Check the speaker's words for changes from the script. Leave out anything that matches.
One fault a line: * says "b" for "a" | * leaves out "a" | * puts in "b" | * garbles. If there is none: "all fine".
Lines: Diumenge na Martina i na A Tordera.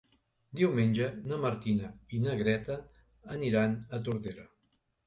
* puts in "Greta aniran"